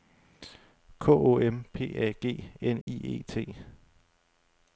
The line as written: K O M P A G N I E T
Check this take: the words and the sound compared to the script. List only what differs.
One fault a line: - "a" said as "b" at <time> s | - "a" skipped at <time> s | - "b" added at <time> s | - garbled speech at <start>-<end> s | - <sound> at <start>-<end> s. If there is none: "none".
- dropout at 2.8-2.9 s